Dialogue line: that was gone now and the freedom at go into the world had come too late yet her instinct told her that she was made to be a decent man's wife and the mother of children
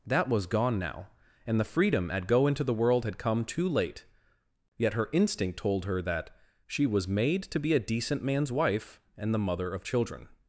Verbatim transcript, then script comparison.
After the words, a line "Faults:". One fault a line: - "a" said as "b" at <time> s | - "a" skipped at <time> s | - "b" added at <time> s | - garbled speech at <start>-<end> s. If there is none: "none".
that was gone now and the freedom at go into the world had come too late yet her instinct told her that she was made to be a decent man's wife and the mother of children
Faults:
none